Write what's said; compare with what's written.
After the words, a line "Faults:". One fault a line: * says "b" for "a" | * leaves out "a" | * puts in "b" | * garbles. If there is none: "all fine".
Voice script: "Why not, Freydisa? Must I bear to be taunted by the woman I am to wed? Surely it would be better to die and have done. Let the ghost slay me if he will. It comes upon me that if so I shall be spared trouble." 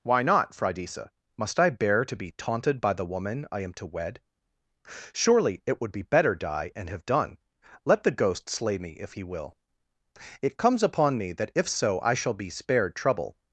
"Why not, Freydisa? Must I bear to be taunted by the woman I am to wed? Surely it would be better die and have done. Let the ghost slay me if he will. It comes upon me that if so I shall be spared trouble."
Faults:
* leaves out "to"